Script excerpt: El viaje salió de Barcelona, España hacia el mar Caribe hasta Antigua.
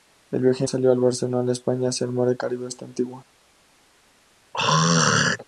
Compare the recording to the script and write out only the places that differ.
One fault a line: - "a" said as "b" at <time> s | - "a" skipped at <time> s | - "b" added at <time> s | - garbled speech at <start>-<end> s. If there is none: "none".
none